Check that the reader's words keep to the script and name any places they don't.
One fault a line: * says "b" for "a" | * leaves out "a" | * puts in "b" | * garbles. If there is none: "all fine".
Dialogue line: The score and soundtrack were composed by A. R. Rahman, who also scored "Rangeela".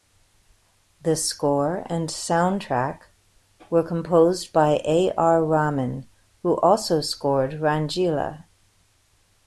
all fine